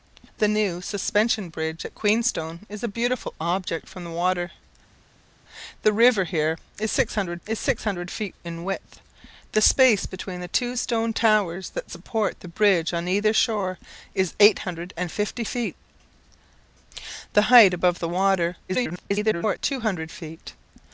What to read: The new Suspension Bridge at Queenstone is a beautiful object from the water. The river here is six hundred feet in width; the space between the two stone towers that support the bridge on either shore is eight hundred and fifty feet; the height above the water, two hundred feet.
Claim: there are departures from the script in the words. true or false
true